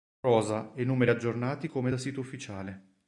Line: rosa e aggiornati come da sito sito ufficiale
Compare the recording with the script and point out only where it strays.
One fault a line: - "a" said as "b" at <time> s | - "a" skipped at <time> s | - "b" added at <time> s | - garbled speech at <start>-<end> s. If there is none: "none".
- "numeri" added at 0.8 s
- "sito" skipped at 2.2 s